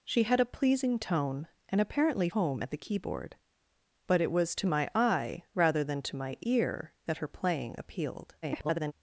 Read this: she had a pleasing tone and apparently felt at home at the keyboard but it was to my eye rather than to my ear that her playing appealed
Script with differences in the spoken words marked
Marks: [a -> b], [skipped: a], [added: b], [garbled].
she had a pleasing tone and apparently [skipped: felt at] home at the keyboard but it was to my eye rather than to my ear that her playing appealed [garbled]